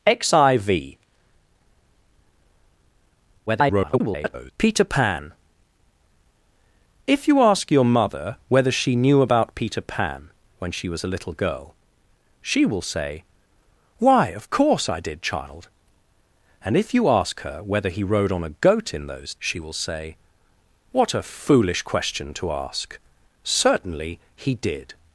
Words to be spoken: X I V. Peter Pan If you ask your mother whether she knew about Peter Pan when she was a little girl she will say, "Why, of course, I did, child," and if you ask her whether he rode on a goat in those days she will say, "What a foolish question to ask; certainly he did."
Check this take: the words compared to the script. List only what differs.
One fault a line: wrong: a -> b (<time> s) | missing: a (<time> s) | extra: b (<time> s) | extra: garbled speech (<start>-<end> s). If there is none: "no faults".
extra: garbled speech (3.5-4.5 s)
missing: days (19.3 s)